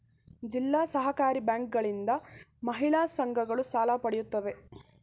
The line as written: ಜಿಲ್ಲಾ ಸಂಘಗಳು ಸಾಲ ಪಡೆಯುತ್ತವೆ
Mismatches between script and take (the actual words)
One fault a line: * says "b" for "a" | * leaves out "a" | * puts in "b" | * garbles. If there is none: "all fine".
* puts in "ಸಹಕಾರಿ ಬ್ಯಾಂಕುಗಳಿಂದ ಮಹಿಳಾ"